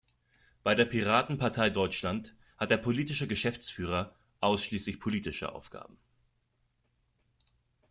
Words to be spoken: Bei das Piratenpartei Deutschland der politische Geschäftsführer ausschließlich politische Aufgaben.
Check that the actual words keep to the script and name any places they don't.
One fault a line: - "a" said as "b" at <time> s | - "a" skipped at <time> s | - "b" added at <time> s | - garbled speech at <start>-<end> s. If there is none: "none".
- "das" said as "der" at 0.7 s
- "hat" added at 2.6 s